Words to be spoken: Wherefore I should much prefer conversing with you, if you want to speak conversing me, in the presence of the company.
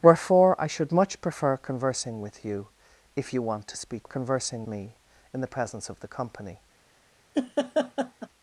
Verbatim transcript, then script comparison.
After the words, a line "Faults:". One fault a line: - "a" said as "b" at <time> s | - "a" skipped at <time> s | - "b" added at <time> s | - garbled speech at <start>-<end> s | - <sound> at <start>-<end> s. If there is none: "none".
Wherefore I should much prefer conversing with you, if you want to speak conversing me, in the presence of the company.
Faults:
- laugh at 7.3-8.3 s